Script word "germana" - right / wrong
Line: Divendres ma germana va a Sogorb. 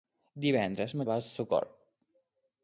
wrong